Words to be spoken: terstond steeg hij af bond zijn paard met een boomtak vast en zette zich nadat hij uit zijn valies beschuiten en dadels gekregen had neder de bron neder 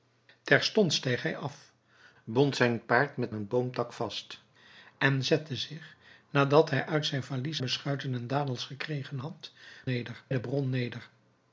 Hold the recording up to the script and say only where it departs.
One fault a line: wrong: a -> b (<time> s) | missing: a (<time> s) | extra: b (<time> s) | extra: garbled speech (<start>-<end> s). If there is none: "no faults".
no faults